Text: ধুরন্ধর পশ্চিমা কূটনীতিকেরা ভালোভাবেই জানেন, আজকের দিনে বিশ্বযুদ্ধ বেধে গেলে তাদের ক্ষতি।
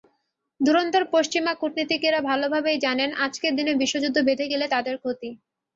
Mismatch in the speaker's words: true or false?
false